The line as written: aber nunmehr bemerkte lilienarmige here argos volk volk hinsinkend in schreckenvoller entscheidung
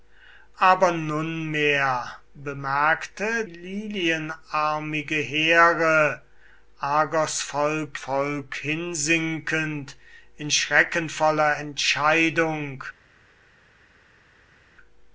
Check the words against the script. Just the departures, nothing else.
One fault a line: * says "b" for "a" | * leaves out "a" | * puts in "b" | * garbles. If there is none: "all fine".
all fine